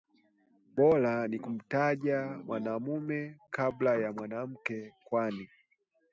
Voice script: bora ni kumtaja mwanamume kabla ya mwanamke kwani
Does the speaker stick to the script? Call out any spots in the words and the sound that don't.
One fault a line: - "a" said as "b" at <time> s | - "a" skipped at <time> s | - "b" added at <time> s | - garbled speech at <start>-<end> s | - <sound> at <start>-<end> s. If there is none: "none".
none